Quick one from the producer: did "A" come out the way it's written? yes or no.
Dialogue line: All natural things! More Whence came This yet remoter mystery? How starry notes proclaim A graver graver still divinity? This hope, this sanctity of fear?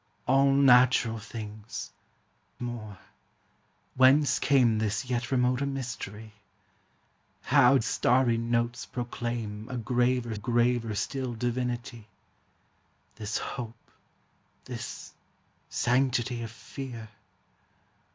yes